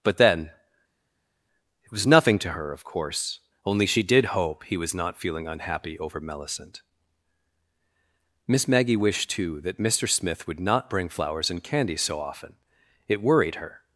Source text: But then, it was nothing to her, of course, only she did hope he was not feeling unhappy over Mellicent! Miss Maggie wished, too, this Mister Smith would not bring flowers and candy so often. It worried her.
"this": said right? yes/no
no